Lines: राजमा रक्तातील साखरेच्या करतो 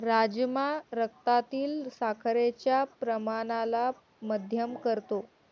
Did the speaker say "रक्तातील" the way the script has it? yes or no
yes